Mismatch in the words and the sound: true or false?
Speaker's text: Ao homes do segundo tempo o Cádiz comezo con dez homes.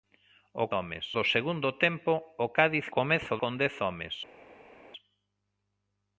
false